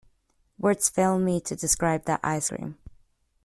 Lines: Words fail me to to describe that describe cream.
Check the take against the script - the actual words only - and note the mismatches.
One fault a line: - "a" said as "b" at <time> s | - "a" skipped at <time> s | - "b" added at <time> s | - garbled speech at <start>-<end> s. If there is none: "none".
- "to" skipped at 1.6 s
- "describe" said as "ice" at 2.2 s